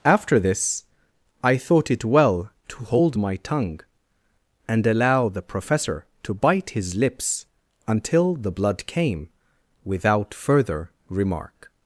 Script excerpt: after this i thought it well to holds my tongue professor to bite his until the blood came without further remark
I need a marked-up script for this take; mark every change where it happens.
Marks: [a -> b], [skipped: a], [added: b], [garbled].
after this i thought it well to [holds -> hold] my tongue [added: and allow the] professor to bite his [added: lips] until the blood came without further remark